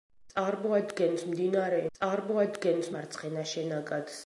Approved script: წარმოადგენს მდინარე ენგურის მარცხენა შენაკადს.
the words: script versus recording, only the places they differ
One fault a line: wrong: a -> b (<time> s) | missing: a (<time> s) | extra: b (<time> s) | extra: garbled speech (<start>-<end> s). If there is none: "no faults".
wrong: ენგურის -> წარმოადგენს (2.0 s)